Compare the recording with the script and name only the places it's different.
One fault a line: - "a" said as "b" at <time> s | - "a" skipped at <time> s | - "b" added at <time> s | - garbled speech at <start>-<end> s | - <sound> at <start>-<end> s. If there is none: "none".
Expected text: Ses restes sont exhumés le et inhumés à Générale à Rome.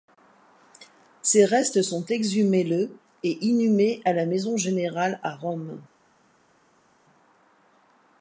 - "la Maison" added at 4.1 s